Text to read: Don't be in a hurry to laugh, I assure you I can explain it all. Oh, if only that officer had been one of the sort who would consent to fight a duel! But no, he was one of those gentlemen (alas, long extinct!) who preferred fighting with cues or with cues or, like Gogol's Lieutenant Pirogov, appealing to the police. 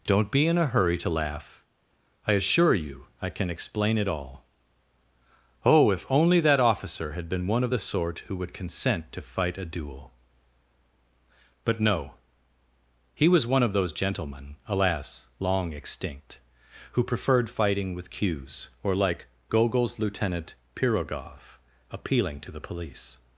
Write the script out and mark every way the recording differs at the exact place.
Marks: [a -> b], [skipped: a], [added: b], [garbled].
Don't be in a hurry to laugh, I assure you I can explain it all. Oh, if only that officer had been one of the sort who would consent to fight a duel! But no, he was one of those gentlemen (alas, long extinct!) who preferred fighting with cues or [skipped: with cues or,] like Gogol's Lieutenant Pirogov, appealing to the police.